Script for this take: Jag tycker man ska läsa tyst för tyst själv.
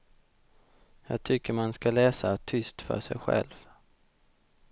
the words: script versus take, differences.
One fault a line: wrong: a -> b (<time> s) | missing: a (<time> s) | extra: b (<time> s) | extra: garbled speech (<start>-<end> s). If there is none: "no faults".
wrong: tyst -> sig (3.0 s)